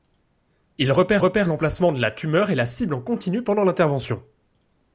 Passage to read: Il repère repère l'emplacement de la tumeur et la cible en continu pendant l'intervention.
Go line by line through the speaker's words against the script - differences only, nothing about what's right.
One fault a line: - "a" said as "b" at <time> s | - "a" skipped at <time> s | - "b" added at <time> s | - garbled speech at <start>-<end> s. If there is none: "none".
none